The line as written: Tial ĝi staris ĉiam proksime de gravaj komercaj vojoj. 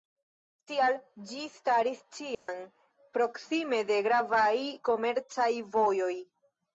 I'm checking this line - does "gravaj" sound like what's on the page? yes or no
yes